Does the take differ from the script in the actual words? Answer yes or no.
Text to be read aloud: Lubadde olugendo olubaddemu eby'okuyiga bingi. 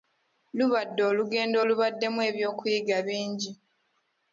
no